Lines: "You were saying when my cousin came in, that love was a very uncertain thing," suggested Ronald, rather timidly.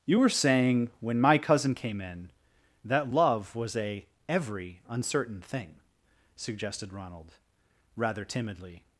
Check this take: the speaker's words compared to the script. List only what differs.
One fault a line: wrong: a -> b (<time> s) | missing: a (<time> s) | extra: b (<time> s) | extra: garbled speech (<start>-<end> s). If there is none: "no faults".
wrong: very -> every (4.3 s)